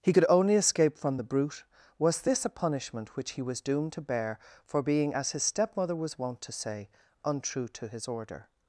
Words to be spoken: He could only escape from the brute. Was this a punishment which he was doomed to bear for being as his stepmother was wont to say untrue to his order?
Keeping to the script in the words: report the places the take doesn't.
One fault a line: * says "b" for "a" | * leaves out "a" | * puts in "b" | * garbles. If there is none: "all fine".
all fine